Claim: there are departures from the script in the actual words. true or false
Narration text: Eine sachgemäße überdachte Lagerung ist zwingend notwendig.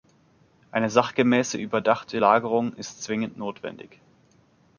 false